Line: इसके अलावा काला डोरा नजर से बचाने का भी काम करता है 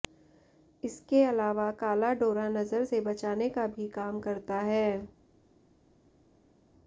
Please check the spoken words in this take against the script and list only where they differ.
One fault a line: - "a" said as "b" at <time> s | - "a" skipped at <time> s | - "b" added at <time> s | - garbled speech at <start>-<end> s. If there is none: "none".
none